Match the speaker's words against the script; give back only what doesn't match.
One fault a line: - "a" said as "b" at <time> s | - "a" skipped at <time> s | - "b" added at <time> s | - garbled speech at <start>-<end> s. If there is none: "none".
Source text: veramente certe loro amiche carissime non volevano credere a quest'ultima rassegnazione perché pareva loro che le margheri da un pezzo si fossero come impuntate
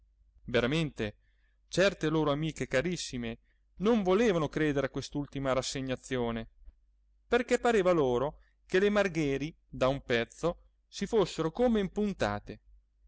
none